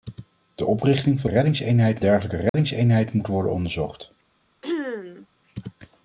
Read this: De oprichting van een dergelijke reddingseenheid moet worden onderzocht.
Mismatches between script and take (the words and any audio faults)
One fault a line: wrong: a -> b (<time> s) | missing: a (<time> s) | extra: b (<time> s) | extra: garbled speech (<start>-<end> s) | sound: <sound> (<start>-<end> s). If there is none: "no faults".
wrong: een -> reddingseenheid (1.2 s)
sound: dropout (2.5-2.5 s)
sound: throat clearing (4.6-5.3 s)